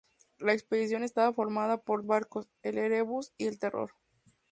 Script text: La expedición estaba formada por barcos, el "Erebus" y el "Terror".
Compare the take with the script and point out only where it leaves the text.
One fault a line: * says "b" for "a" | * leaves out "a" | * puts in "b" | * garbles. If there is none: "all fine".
all fine